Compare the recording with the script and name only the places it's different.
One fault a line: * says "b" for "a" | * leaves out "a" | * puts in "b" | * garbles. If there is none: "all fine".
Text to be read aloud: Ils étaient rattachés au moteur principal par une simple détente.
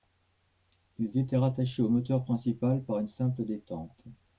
all fine